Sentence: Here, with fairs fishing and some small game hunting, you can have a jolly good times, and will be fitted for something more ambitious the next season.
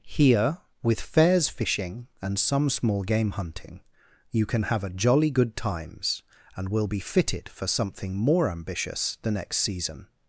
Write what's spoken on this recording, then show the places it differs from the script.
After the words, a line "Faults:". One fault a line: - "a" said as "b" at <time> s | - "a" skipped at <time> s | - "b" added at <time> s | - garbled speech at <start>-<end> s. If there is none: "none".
Here, with fairs fishing and some small game hunting, you can have a jolly good times, and will be fitted for something more ambitious the next season.
Faults:
none